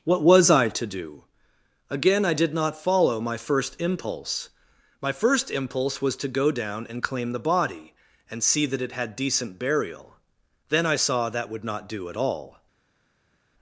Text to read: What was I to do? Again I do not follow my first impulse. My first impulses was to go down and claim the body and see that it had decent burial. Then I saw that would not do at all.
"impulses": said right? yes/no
no